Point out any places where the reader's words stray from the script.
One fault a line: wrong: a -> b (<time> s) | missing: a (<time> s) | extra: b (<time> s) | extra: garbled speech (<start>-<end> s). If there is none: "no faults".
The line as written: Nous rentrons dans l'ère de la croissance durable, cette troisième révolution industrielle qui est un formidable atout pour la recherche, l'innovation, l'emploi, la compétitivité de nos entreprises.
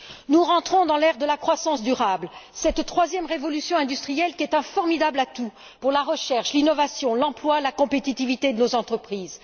no faults